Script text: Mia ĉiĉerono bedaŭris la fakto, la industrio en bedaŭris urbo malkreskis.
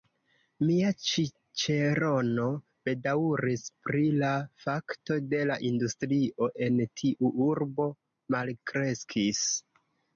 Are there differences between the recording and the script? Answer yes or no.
yes